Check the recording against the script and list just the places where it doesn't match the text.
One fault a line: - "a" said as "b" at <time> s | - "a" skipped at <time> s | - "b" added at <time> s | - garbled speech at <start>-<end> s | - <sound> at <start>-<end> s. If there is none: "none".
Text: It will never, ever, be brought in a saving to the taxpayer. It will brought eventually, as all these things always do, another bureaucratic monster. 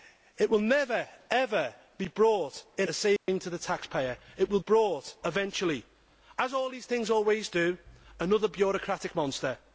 - dropout at 3.2-3.3 s